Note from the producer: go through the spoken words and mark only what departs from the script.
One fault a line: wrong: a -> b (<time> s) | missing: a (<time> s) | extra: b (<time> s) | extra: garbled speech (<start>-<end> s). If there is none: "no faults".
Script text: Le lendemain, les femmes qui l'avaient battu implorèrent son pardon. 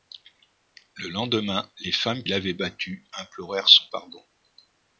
missing: qui (2.2 s)